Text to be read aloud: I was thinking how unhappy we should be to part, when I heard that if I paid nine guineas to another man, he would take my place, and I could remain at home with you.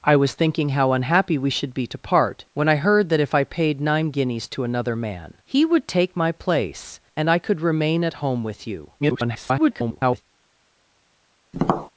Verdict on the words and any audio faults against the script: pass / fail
fail